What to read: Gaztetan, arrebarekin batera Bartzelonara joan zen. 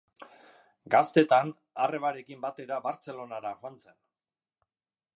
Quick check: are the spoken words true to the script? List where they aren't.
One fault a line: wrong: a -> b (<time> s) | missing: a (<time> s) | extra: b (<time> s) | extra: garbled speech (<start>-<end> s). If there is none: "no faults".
no faults